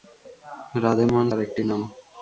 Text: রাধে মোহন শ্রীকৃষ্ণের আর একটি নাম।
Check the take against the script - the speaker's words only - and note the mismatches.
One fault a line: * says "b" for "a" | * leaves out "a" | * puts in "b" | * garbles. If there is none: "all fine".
* leaves out "শ্রীকৃষ্ণের"